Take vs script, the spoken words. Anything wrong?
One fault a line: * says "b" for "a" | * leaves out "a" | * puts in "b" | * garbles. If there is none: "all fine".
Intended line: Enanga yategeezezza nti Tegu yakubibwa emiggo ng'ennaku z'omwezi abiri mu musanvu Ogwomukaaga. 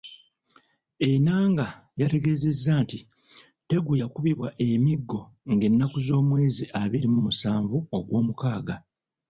all fine